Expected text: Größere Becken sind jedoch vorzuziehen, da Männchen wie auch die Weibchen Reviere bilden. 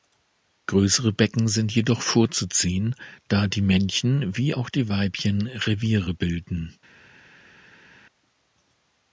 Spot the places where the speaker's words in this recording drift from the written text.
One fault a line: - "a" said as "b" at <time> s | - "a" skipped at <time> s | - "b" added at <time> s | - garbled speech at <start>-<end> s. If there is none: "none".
- "die" added at 3.5 s